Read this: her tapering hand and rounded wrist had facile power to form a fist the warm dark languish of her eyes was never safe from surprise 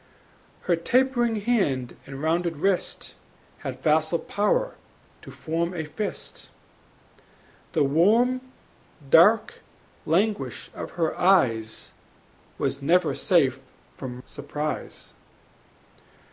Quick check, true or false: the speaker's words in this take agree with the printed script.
true